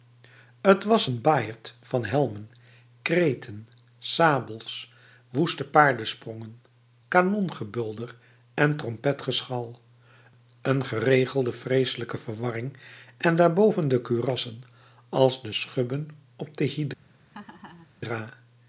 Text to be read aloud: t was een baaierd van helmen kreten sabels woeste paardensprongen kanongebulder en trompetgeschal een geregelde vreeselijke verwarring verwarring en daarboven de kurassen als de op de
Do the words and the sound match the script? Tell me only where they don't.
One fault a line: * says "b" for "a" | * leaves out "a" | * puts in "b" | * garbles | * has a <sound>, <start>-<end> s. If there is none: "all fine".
* leaves out "verwarring"
* puts in "schubben"
* has a laugh, 17.3-17.9 s